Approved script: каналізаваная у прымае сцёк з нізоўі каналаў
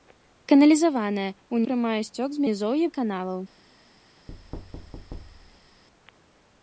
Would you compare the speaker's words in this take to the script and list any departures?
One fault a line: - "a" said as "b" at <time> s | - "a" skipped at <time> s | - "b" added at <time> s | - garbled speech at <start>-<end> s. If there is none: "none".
none